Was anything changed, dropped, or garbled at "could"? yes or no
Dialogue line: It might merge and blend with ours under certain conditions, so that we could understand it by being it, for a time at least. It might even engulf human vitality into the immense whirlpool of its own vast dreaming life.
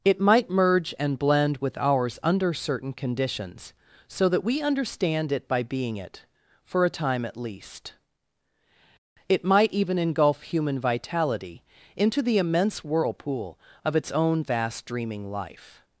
yes